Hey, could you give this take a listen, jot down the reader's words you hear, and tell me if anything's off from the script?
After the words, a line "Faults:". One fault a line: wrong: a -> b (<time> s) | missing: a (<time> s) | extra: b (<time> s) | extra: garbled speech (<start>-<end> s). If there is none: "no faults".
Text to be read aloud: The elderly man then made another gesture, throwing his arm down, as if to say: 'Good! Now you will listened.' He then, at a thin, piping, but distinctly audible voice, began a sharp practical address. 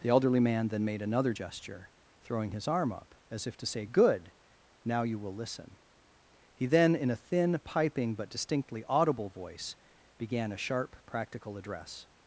The elderly man then made another gesture, throwing his arm up, as if to say: 'Good! Now you will listen.' He then, in a thin, piping, but distinctly audible voice, began a sharp practical address.
Faults:
wrong: down -> up (2.9 s)
wrong: listened -> listen (5.4 s)
wrong: at -> in (7.0 s)